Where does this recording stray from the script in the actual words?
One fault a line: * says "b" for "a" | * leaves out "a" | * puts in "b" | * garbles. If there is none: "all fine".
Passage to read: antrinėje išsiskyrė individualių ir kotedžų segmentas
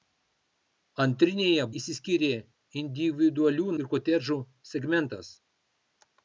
all fine